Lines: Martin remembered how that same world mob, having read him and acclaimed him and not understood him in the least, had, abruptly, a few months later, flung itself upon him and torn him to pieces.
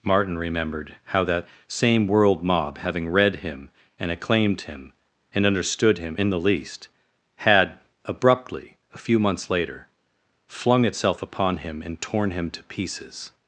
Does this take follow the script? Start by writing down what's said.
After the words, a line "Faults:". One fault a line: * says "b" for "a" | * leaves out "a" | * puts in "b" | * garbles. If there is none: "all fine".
Martin remembered how that same world mob, having read him and acclaimed him and understood him in the least, had, abruptly, a few months later, flung itself upon him and torn him to pieces.
Faults:
* leaves out "not"